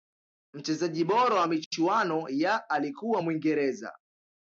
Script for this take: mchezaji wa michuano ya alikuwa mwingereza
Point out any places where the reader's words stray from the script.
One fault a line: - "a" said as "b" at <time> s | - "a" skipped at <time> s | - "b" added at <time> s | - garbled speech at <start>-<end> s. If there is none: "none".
- "bora" added at 1.0 s